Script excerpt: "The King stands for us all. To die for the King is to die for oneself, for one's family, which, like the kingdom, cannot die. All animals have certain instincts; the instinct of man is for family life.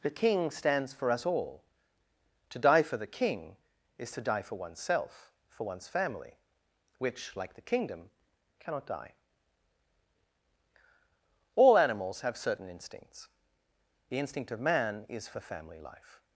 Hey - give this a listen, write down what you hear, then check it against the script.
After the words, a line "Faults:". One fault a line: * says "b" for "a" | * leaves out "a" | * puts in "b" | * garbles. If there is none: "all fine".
"The King stands for us all. To die for the King is to die for oneself, for one's family, which, like the kingdom, cannot die. All animals have certain instincts; the instinct of man is for family life.
Faults:
all fine